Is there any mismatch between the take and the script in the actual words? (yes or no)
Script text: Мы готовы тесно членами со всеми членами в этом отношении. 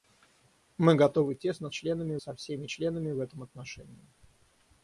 no